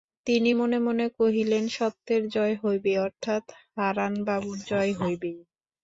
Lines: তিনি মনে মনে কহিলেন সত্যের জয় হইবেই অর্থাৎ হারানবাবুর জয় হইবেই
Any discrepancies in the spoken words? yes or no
no